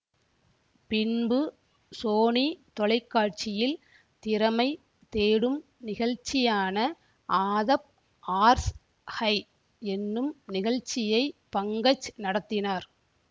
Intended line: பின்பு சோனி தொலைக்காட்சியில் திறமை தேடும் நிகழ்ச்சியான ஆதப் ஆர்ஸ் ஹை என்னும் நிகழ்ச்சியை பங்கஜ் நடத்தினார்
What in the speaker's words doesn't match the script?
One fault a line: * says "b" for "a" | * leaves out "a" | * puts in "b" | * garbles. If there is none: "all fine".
all fine